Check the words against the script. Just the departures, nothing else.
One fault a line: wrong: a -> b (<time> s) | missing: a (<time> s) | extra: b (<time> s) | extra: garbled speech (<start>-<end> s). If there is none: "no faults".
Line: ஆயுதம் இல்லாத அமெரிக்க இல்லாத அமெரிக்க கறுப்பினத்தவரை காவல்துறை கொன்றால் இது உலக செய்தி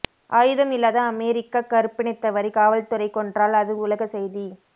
missing: இல்லாத அமெரிக்க (1.6 s)
wrong: இது -> அது (3.6 s)